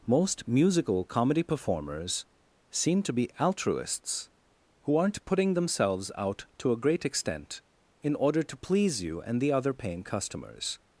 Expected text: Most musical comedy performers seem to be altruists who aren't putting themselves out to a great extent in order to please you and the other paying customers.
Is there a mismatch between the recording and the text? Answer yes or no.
no